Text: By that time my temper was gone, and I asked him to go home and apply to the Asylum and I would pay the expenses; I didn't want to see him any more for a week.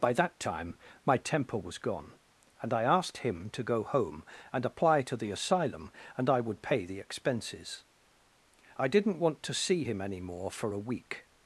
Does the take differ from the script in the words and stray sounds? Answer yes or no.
no